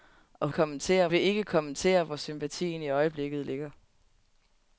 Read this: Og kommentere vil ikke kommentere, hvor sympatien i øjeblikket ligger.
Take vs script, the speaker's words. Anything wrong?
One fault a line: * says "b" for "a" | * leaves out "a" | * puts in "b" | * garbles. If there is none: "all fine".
all fine